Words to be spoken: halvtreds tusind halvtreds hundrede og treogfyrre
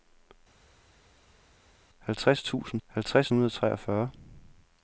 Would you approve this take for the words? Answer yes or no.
yes